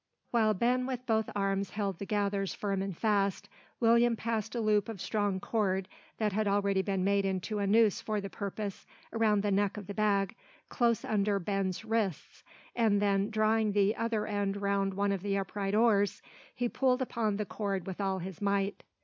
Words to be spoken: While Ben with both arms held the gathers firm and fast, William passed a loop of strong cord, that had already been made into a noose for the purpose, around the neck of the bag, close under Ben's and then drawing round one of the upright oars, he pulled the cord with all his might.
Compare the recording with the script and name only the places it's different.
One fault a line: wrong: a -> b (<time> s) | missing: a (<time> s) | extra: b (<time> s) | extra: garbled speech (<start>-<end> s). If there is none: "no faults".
extra: wrists (11.8 s)
extra: the other end (13.7 s)
extra: upon (17.0 s)